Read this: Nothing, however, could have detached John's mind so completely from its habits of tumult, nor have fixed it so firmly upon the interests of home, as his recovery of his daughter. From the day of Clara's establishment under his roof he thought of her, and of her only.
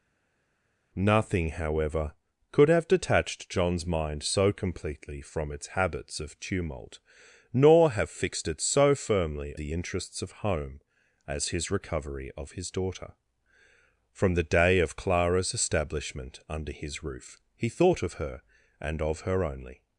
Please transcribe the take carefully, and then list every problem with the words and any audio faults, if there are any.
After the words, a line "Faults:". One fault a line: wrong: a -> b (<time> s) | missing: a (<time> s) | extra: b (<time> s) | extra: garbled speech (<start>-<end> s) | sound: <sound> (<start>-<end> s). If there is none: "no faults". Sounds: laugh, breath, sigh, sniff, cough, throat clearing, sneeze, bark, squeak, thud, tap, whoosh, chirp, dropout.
Nothing, however, could have detached John's mind so completely from its habits of tumult, nor have fixed it so firmly the interests of home, as his recovery of his daughter. From the day of Clara's establishment under his roof he thought of her, and of her only.
Faults:
missing: upon (9.5 s)